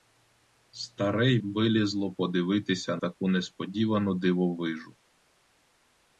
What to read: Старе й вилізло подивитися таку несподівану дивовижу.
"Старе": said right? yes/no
yes